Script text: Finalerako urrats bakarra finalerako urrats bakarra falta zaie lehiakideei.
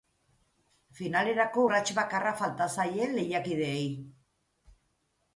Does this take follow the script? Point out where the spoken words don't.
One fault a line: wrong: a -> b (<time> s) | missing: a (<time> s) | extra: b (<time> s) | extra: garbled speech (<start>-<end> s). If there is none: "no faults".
missing: finalerako urrats bakarra (2.3 s)